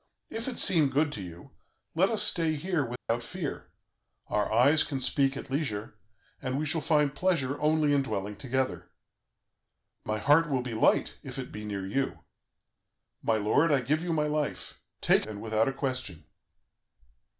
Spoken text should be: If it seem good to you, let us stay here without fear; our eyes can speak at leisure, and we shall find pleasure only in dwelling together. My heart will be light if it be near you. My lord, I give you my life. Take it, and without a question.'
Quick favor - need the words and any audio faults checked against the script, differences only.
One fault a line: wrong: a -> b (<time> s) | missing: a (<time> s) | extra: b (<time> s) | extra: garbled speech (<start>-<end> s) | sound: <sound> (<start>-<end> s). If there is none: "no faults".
sound: dropout (3.0-3.1 s)
missing: it (15.3 s)